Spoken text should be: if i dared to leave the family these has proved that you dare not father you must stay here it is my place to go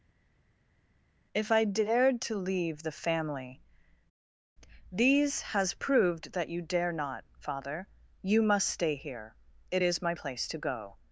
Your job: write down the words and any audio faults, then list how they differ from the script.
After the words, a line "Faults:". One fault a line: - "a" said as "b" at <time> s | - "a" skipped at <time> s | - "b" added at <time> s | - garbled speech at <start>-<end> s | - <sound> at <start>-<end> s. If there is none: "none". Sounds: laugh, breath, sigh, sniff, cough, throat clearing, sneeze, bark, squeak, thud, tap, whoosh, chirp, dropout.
if i dared to leave the family these has proved that you dare not father you must stay here it is my place to go
Faults:
none